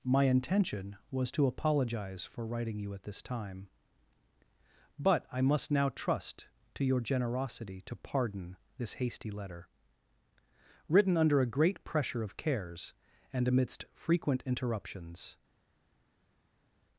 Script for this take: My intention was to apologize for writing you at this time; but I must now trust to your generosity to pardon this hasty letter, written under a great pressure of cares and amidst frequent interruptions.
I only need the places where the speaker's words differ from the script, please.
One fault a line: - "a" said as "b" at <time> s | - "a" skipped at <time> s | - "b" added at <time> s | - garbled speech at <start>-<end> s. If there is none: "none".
none